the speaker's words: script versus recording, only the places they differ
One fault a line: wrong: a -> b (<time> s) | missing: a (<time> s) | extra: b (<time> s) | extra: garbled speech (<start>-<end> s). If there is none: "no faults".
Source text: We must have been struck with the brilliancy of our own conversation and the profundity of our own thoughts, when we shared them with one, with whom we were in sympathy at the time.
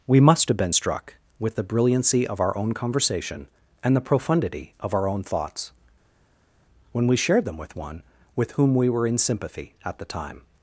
no faults